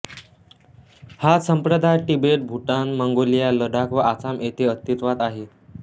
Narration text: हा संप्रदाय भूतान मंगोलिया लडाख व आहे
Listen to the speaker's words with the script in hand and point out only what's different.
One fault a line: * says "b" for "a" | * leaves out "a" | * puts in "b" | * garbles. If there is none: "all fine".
* puts in "तिबेट"
* puts in "आसाम येथे अस्तित्वात"